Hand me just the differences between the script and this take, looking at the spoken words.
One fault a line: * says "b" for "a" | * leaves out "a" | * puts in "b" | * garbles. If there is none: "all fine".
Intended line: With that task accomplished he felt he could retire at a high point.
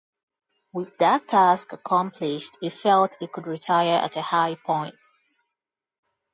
all fine